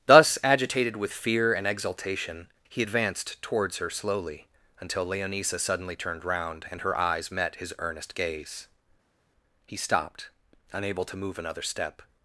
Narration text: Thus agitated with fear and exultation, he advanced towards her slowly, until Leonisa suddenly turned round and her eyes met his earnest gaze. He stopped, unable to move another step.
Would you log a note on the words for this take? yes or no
no